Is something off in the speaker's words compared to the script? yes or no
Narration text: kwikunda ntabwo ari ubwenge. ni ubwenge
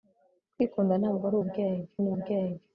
no